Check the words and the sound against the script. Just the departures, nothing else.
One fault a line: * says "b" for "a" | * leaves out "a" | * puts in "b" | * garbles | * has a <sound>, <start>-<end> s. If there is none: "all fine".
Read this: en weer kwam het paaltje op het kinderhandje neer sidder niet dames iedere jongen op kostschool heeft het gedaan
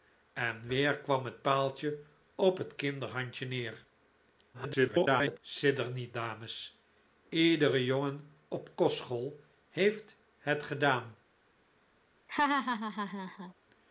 * garbles
* has a laugh, 12.3-13.5 s